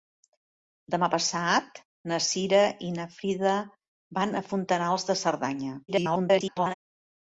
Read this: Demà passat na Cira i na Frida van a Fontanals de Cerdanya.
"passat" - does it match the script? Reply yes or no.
yes